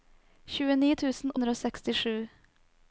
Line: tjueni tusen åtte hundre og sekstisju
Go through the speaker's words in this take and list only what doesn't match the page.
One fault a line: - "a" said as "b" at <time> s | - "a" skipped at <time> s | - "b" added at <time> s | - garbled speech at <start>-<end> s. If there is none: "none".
- "åtte" skipped at 1.3 s